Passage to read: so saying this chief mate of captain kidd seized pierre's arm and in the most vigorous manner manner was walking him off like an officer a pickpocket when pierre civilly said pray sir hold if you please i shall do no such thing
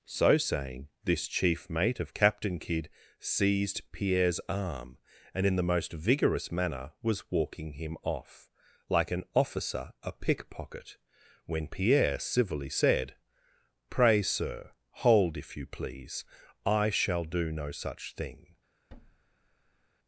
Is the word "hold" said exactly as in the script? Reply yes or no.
yes